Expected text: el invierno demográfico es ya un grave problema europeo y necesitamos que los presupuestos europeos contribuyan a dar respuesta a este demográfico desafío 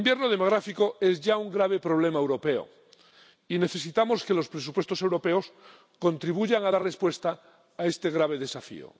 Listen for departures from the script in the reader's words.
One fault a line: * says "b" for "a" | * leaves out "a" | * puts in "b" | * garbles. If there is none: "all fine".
* says "grave" for "demográfico"